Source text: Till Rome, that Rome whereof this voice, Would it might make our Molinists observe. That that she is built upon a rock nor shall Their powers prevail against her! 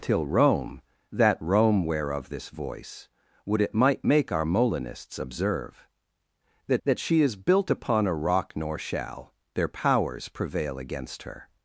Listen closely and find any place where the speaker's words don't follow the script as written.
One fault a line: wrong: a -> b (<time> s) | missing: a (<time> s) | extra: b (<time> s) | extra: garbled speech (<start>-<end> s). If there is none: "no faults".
no faults